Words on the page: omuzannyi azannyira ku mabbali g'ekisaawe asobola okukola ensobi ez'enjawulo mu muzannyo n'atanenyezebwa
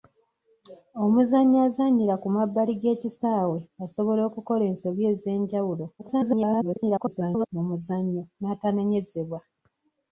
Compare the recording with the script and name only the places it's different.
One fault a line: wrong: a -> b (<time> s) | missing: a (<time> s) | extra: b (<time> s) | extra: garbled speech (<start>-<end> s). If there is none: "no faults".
extra: garbled speech (6.0-7.5 s)